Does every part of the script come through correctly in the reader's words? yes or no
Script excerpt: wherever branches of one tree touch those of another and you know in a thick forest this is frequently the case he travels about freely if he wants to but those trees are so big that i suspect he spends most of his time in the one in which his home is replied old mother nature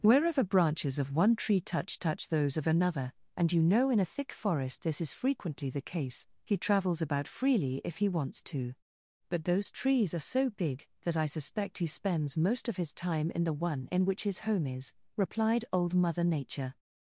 no